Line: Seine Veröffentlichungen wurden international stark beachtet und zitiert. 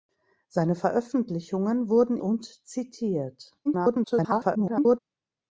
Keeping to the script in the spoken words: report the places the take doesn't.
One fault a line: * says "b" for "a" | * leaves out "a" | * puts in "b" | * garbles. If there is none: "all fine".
* leaves out "international stark beachtet"
* garbles